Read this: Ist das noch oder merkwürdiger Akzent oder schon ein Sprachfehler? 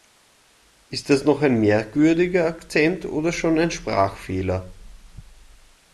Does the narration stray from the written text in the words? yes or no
yes